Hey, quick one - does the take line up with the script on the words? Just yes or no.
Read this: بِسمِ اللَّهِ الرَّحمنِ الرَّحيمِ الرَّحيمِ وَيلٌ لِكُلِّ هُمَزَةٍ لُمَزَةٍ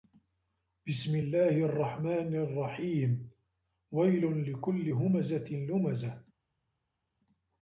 no